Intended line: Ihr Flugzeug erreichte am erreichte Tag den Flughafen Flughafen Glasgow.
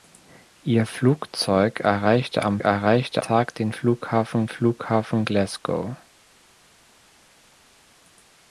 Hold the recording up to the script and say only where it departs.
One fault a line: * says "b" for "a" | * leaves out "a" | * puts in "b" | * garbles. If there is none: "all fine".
all fine